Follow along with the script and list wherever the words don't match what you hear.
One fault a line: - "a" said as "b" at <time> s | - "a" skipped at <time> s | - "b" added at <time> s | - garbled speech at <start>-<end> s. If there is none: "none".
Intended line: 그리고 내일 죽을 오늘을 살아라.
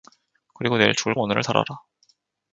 none